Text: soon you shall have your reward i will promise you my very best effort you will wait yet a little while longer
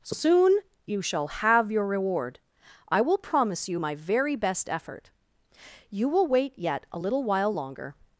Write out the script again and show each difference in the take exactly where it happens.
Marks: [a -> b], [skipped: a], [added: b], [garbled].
soon you shall have your reward i will promise you my very best effort you will wait yet a little while longer